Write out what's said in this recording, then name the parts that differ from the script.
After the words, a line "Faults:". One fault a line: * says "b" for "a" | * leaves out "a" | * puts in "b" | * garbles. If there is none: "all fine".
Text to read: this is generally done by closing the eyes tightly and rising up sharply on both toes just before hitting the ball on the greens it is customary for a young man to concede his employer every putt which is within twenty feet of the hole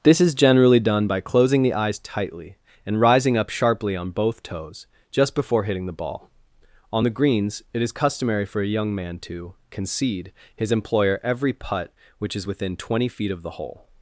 this is generally done by closing the eyes tightly and rising up sharply on both toes just before hitting the ball on the greens it is customary for a young man to concede his employer every putt which is within twenty feet of the hole
Faults:
all fine